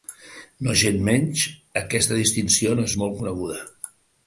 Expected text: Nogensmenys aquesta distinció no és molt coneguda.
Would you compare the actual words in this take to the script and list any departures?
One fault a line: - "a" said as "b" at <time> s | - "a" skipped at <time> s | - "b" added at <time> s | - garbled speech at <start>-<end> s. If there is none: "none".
none